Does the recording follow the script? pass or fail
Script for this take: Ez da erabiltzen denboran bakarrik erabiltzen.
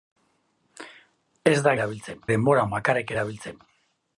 pass